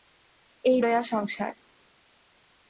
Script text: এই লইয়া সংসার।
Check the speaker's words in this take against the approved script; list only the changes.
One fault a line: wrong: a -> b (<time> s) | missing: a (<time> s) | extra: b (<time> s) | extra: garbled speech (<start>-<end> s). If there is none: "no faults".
no faults